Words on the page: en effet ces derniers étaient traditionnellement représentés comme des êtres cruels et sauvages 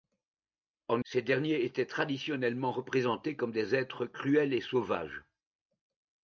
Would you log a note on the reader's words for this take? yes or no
yes